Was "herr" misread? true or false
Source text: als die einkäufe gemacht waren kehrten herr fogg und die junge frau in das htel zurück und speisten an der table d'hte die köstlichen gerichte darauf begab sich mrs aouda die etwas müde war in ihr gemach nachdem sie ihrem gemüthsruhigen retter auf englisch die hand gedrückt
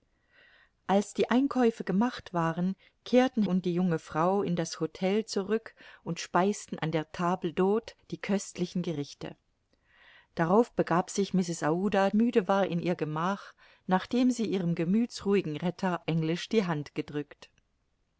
true